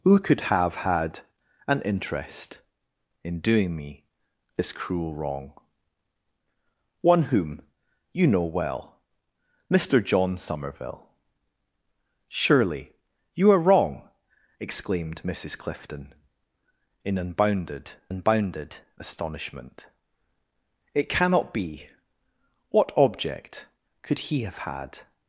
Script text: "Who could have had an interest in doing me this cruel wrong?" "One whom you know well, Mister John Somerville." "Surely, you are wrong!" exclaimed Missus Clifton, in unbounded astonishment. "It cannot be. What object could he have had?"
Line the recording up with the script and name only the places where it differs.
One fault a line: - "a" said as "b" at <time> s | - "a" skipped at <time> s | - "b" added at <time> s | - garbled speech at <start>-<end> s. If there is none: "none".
- "unbounded" added at 18.1 s